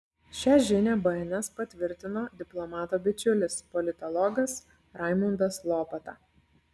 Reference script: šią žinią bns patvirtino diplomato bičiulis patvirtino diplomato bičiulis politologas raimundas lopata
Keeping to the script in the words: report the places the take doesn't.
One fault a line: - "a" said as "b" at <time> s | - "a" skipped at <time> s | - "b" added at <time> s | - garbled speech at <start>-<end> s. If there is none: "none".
- "patvirtino diplomato bičiulis" skipped at 3.6 s